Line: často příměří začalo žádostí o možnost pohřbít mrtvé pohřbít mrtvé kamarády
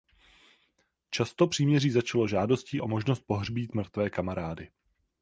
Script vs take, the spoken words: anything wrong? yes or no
yes